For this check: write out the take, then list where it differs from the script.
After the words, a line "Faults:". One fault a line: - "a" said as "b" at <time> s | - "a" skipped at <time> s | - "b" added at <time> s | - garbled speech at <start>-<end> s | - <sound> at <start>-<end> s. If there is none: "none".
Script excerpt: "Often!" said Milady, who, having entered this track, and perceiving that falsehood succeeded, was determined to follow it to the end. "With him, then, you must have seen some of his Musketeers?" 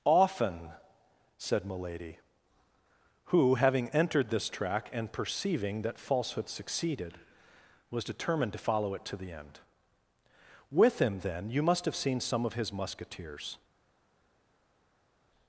"Often!" said Milady, who, having entered this track, and perceiving that falsehood succeeded, was determined to follow it to the end. "With him, then, you must have seen some of his Musketeers?"
Faults:
none